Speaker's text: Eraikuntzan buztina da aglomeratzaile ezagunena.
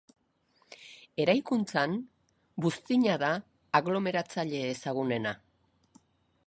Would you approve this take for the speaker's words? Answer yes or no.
yes